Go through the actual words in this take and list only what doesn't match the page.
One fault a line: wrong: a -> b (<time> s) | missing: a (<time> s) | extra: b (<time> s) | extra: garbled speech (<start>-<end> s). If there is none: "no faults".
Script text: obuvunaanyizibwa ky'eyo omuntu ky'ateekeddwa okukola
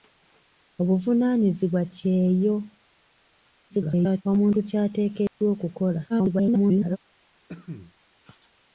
extra: garbled speech (3.7-4.2 s)
extra: garbled speech (6.1-7.0 s)